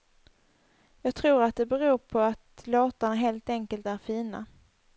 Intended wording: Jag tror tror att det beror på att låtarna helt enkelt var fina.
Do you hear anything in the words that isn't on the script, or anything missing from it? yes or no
yes